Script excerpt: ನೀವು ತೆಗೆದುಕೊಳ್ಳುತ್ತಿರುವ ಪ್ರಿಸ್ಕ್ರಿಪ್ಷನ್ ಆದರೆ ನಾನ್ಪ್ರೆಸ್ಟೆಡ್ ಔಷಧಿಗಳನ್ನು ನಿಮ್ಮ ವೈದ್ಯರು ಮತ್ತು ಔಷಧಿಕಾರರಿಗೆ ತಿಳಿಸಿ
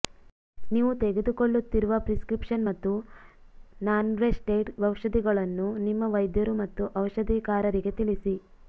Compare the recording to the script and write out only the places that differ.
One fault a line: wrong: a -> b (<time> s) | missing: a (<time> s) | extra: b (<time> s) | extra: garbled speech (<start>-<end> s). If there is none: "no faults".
wrong: ಆದರೆ -> ಮತ್ತು (2.7 s)